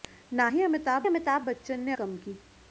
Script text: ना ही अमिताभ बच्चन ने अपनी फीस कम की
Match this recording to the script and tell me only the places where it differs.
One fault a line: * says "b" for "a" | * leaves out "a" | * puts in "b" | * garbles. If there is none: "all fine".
* puts in "अमिताभ"
* leaves out "अपनी फीस"